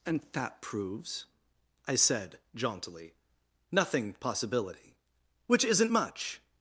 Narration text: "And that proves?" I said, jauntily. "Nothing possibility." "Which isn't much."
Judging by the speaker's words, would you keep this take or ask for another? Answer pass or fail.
pass